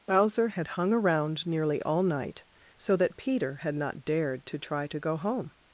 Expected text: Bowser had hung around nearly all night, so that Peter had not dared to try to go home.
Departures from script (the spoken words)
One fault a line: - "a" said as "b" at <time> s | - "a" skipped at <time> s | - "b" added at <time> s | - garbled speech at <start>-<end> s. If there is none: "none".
none